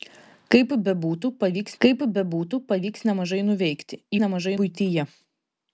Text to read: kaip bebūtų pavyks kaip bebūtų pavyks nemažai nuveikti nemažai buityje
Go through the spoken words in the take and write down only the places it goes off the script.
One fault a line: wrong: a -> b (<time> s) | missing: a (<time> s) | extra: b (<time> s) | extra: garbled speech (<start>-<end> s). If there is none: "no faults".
no faults